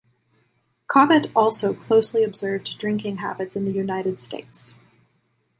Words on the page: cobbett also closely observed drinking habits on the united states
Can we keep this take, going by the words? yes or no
no